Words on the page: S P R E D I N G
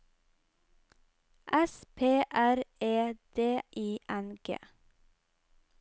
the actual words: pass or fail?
pass